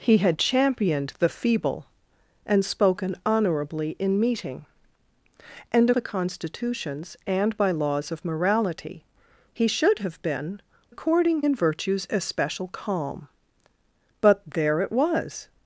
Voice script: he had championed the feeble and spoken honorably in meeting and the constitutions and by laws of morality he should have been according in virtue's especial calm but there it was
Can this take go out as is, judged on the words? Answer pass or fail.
pass